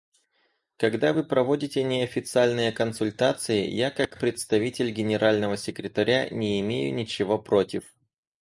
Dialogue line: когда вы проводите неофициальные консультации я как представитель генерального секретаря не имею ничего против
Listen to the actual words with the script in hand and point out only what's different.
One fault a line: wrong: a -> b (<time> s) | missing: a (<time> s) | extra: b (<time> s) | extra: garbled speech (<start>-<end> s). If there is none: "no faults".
no faults